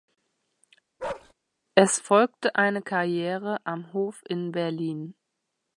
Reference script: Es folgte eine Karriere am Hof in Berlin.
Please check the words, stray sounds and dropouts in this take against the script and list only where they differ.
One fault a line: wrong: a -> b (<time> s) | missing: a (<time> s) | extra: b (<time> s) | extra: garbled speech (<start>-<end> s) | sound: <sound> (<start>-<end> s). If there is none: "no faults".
sound: bark (1.0-1.3 s)